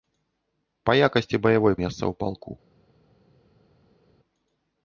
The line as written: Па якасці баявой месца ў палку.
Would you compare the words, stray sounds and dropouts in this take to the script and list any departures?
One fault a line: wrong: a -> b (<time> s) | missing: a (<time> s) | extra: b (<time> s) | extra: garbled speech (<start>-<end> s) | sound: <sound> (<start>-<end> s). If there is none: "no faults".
no faults